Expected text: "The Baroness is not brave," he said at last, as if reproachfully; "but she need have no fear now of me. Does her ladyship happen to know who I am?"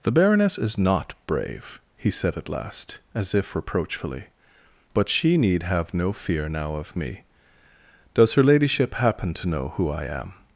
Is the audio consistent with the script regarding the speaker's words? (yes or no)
yes